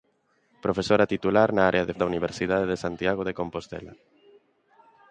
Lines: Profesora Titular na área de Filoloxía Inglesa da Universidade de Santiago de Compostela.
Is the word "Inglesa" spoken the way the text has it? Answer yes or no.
no